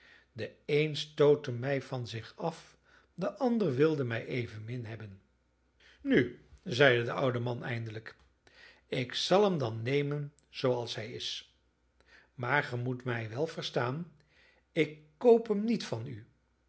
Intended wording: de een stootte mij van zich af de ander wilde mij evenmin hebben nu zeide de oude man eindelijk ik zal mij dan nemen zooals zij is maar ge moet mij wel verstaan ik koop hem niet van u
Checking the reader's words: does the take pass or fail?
fail